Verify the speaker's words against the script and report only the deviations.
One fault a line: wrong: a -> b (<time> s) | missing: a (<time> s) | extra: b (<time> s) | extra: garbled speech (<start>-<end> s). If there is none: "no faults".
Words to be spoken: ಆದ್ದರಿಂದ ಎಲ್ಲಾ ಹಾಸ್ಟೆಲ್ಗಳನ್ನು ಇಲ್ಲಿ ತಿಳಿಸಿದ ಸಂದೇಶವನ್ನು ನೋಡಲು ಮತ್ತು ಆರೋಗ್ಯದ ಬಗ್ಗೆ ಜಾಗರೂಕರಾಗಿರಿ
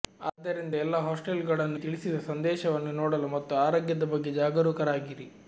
missing: ಇಲ್ಲಿ (1.8 s)